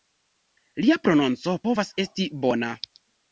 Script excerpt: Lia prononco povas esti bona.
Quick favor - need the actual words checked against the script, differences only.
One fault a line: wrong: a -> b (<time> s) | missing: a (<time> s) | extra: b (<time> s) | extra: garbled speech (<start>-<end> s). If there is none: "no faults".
no faults